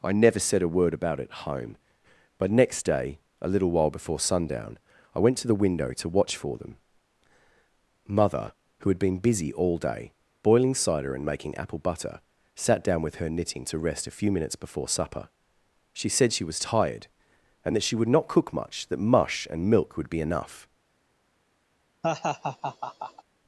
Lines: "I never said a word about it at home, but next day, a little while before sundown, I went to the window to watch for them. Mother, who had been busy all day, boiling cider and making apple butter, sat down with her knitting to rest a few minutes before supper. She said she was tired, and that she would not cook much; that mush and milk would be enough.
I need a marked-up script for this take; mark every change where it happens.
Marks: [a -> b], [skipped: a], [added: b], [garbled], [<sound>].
"I never said a word about it [skipped: at] home, but next day, a little while before sundown, I went to the window to watch for them. Mother, who had been busy all day, boiling cider and making apple butter, sat down with her knitting to rest a few minutes before supper. She said she was tired, and that she would not cook much; that mush and milk would be enough. [laugh]